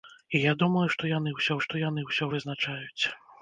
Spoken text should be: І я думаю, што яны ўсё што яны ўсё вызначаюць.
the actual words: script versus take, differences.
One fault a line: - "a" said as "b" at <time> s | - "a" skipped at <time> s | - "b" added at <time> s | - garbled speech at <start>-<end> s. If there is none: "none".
none